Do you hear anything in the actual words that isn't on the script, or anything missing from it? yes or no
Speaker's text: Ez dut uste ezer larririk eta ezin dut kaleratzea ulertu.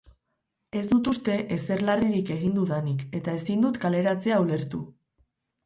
yes